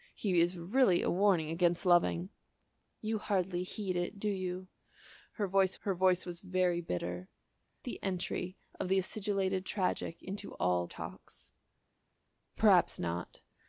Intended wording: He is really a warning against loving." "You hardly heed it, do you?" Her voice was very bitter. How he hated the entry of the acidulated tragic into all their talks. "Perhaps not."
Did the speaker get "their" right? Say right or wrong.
wrong